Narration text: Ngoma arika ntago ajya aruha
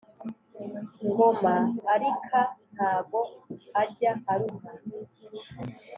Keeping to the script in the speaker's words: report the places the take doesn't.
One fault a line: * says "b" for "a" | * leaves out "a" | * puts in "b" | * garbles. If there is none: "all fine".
all fine